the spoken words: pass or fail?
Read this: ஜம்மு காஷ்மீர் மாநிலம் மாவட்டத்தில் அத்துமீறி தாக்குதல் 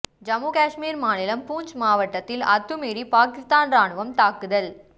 fail